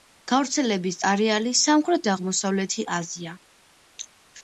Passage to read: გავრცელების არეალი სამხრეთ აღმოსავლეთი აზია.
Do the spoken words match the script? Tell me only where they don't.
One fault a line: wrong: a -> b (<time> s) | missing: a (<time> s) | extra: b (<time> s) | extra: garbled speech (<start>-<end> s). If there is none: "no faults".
no faults